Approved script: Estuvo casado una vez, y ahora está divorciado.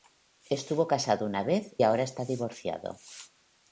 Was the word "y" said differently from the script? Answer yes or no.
yes